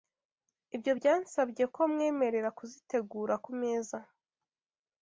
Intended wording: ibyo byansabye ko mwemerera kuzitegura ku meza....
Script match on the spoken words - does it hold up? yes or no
yes